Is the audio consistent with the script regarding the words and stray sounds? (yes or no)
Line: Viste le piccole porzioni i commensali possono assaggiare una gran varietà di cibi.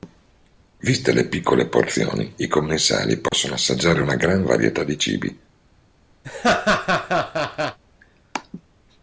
no